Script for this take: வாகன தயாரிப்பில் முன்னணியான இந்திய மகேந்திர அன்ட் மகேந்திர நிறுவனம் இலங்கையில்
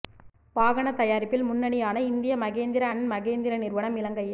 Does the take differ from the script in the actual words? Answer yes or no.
no